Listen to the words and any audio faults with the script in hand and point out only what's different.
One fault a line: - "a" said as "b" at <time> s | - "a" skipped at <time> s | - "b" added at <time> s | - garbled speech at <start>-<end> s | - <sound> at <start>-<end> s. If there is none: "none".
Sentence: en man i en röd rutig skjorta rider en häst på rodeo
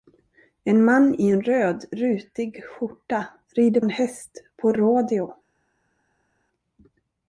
none